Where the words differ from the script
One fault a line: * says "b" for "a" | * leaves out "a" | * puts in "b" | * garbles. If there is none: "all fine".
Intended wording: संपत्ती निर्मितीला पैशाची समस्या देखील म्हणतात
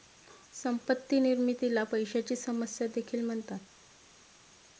all fine